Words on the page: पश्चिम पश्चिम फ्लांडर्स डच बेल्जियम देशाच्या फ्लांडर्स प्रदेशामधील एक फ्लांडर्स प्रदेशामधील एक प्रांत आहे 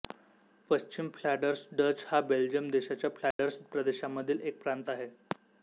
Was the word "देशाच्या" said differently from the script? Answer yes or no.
no